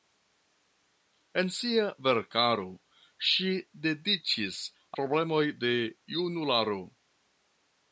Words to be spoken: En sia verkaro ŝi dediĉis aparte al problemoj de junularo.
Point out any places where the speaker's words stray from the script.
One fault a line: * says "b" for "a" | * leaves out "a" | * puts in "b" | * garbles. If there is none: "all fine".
* leaves out "aparte al"